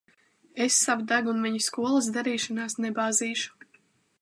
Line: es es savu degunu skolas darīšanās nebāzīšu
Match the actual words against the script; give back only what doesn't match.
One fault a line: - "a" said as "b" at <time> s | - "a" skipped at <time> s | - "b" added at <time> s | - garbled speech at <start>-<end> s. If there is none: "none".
- "es" skipped at 0.8 s
- "viņa" added at 1.5 s